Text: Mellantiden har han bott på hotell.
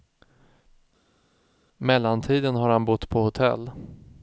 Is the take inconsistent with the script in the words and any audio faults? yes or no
no